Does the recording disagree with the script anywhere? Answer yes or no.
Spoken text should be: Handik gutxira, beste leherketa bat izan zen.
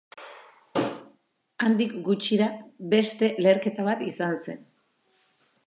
no